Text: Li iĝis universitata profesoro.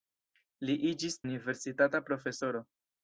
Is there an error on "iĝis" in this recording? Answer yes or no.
no